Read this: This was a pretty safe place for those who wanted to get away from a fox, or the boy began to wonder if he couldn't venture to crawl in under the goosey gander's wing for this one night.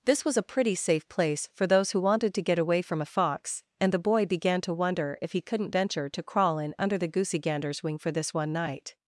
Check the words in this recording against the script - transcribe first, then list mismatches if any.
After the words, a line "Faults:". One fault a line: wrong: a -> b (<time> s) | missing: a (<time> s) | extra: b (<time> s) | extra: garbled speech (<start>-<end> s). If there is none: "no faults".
This was a pretty safe place for those who wanted to get away from a fox, and the boy began to wonder if he couldn't venture to crawl in under the goosey gander's wing for this one night.
Faults:
wrong: or -> and (3.8 s)